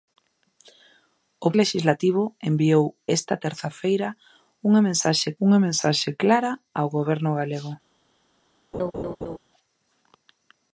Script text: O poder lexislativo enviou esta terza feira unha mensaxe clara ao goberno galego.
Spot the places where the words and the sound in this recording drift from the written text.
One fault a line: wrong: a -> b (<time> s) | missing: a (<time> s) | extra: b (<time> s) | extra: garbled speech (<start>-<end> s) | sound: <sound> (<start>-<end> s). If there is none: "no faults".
missing: poder (1.5 s)
extra: unha mensaxe (5.5 s)
sound: laugh (8.7-9.4 s)